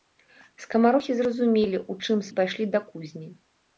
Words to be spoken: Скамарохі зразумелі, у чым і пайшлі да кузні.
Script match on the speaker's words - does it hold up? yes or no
yes